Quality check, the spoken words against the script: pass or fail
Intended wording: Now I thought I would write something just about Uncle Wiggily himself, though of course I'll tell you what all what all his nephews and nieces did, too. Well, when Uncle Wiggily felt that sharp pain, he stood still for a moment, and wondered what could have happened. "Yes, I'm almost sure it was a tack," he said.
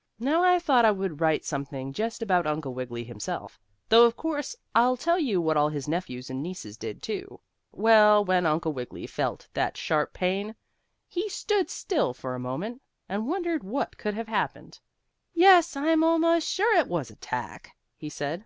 fail